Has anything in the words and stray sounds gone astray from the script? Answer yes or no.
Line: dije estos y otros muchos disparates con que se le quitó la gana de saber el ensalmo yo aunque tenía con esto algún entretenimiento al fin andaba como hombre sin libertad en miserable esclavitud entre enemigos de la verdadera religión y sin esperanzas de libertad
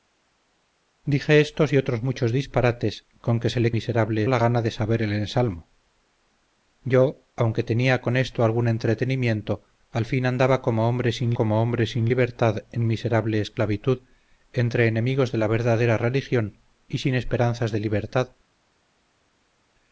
yes